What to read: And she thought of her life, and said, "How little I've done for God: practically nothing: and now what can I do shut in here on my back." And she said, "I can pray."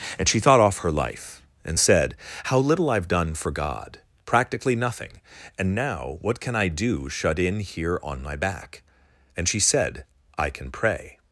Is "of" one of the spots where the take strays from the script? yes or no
yes